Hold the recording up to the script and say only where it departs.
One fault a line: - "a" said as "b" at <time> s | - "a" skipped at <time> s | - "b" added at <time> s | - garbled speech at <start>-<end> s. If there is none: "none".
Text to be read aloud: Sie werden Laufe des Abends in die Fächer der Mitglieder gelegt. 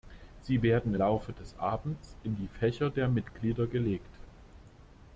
none